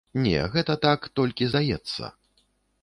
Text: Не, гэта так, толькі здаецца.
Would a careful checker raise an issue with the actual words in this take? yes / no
no